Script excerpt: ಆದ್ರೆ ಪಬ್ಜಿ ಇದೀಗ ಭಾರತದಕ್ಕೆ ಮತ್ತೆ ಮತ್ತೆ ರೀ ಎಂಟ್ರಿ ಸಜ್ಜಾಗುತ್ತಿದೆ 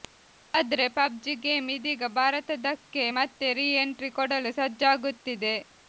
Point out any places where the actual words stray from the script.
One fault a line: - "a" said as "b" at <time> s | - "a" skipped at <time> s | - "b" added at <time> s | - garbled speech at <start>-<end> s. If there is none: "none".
- "ಗೇಮ್" added at 1.4 s
- "ಮತ್ತೆ" skipped at 3.5 s
- "ಕೊಡಲು" added at 4.1 s